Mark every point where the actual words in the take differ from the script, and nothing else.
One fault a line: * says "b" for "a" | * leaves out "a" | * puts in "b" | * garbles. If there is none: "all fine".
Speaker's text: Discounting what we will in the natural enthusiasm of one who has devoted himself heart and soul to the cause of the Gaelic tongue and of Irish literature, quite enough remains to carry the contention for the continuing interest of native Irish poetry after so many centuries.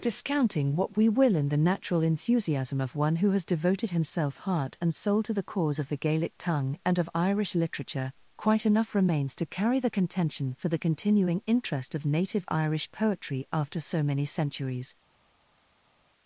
all fine